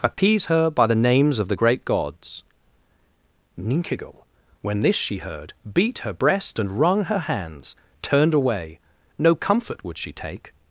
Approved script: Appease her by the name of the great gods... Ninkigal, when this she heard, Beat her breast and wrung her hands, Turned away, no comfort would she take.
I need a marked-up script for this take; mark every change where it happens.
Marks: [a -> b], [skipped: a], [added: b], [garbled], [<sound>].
Appease [dropout] her by the [name -> names] of the great gods... Ninkigal, when this she heard, Beat her breast and wrung her hands, Turned away, no comfort would she take.